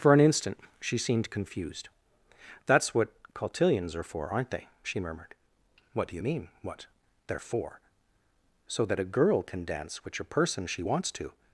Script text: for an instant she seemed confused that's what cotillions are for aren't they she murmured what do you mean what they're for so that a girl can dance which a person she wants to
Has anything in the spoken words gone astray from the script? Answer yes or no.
no